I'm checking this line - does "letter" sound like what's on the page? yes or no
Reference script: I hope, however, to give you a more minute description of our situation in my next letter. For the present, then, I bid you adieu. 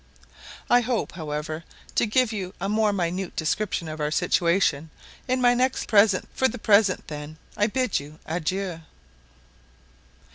no